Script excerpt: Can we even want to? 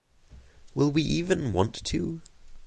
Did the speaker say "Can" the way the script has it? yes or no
no